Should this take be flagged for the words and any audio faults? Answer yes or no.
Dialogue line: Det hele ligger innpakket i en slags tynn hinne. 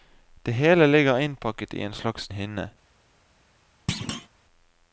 yes